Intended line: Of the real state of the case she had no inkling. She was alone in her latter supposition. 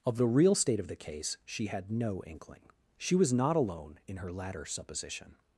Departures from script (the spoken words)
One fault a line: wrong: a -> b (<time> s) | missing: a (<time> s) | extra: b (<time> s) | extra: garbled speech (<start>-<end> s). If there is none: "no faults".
extra: not (3.3 s)